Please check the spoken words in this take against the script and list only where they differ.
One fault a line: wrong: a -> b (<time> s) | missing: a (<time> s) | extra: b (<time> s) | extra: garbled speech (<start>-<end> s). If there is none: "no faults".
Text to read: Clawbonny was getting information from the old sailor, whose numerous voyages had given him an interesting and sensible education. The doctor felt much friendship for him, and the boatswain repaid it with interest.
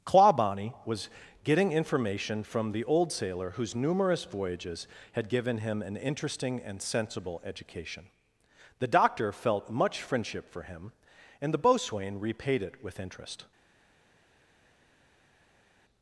no faults